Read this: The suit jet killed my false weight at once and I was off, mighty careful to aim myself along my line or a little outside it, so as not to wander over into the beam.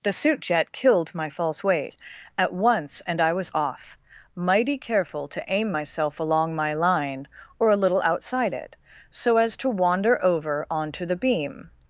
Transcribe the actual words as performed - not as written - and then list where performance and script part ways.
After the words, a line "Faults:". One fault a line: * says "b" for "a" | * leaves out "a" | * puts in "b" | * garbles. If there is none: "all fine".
The suit jet killed my false weight at once and I was off, mighty careful to aim myself along my line or a little outside it, so as to wander over onto the beam.
Faults:
* leaves out "not"
* says "onto" for "into"